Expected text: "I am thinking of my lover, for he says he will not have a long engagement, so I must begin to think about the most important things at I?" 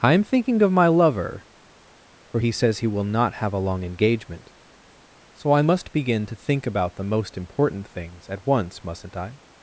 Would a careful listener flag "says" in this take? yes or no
no